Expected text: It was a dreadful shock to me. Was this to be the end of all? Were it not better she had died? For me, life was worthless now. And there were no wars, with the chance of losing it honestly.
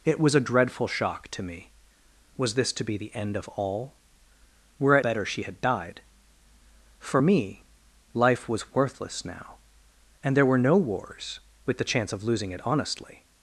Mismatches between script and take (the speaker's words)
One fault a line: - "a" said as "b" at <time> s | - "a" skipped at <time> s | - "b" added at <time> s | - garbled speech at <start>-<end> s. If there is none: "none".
- "not" skipped at 5.0 s